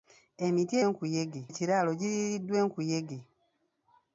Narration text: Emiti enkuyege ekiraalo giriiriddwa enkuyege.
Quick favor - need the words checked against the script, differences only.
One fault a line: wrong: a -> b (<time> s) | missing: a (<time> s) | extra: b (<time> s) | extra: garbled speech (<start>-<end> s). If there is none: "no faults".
no faults